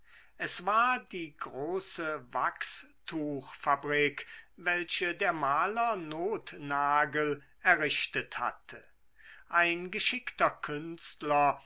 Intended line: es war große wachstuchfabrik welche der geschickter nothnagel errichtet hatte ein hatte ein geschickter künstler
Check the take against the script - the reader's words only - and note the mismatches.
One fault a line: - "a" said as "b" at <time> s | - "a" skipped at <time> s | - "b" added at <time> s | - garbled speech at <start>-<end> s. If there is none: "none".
- "die" added at 1.1 s
- "geschickter" said as "maler" at 5.3 s
- "hatte ein" skipped at 9.9 s